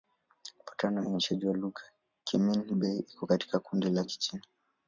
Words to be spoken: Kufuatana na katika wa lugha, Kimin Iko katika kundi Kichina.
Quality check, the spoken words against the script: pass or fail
fail